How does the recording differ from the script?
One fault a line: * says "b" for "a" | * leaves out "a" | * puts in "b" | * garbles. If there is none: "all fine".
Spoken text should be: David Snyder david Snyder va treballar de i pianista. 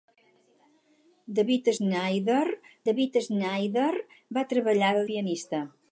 all fine